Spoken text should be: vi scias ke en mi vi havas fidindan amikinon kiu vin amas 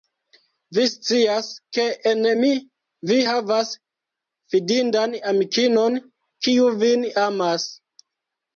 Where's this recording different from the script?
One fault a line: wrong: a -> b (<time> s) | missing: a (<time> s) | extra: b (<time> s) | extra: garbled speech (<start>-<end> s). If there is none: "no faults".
no faults